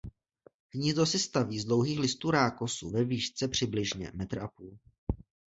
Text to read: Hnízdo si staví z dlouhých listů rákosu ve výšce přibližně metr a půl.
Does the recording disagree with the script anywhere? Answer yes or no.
no